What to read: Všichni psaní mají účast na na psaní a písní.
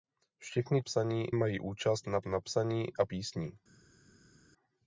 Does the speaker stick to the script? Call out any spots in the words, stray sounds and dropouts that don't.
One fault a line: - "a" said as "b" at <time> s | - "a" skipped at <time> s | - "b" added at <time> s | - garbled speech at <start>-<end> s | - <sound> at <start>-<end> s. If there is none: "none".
none